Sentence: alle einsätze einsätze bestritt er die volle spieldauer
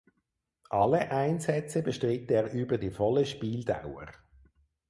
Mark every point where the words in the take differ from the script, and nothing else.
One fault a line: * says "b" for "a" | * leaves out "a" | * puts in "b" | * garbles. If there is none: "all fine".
* leaves out "einsätze"
* puts in "über"